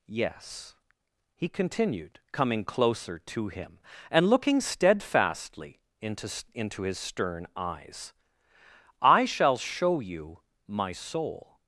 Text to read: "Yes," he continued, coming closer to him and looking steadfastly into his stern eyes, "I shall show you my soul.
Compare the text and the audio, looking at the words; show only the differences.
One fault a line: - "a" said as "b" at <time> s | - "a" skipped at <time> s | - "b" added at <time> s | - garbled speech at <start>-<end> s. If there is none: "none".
- "into" added at 6.5 s